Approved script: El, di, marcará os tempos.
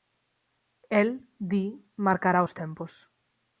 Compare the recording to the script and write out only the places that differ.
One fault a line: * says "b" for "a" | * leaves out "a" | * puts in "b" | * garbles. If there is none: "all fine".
all fine